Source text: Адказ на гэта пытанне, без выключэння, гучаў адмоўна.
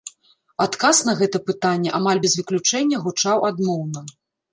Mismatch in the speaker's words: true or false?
true